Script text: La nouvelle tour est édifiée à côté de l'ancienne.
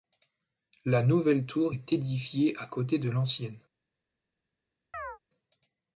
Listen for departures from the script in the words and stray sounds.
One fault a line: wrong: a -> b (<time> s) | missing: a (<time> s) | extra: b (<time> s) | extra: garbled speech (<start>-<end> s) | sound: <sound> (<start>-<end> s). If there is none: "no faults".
sound: chirp (4.9-5.2 s)